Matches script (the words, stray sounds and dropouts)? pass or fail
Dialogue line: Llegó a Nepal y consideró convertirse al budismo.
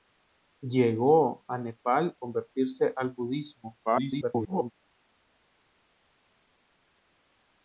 fail